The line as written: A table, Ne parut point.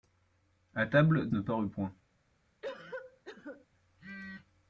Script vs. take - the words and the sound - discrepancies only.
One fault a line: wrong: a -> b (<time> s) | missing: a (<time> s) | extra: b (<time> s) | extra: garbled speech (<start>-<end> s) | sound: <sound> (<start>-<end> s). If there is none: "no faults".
sound: cough (2.6-3.7 s)